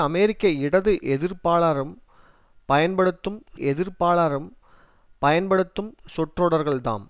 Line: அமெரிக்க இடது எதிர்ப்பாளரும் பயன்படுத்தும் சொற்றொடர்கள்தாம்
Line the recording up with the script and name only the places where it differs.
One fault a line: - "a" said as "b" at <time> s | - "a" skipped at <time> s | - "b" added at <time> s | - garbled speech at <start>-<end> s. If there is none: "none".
- "எதிர்ப்பாளரும் பயன்படுத்தும்" added at 3.6 s